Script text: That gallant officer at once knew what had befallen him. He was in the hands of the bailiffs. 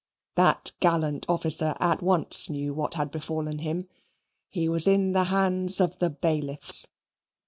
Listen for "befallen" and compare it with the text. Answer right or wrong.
right